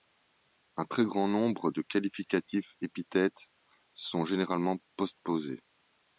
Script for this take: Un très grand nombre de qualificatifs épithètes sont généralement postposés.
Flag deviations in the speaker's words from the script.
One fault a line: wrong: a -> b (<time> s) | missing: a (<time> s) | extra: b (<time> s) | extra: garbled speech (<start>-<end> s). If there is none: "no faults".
no faults